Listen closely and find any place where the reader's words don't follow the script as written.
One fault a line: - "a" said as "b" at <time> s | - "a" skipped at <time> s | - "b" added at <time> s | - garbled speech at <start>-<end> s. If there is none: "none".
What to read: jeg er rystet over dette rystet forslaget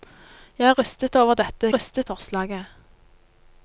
none